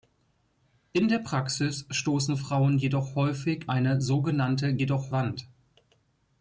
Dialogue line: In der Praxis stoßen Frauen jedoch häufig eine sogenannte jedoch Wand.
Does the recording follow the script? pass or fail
pass